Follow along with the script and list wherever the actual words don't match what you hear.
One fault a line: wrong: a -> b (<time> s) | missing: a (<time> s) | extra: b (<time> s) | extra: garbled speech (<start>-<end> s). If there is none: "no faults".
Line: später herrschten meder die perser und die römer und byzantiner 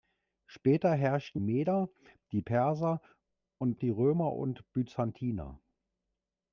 no faults